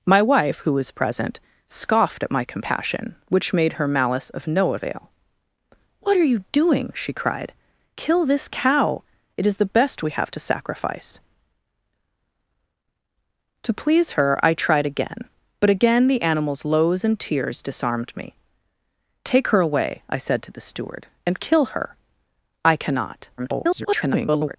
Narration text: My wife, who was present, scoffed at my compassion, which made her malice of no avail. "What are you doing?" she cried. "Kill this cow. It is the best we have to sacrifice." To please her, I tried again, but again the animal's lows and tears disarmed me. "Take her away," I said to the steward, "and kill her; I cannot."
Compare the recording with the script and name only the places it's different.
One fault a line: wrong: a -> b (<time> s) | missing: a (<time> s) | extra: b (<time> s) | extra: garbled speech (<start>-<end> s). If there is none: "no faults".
extra: garbled speech (23.4-24.6 s)